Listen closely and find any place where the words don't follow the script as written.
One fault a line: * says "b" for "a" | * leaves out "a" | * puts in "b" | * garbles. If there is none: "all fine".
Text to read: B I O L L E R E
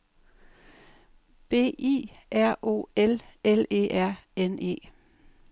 * puts in "R"
* puts in "N"